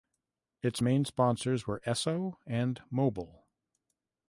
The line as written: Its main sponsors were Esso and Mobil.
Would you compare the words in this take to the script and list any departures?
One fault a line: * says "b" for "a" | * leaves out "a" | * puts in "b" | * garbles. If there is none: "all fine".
all fine